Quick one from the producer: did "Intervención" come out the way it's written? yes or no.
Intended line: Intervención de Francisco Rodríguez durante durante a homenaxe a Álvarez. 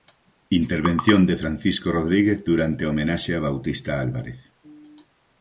yes